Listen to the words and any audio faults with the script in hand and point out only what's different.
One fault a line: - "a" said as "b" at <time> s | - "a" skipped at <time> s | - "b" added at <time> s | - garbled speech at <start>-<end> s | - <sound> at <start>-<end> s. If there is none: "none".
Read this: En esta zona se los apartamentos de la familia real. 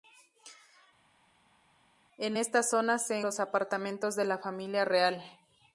none